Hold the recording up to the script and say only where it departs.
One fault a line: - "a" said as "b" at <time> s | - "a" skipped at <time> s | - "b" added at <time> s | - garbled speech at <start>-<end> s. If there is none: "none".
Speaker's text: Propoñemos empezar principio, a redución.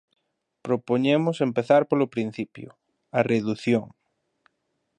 - "polo" added at 1.9 s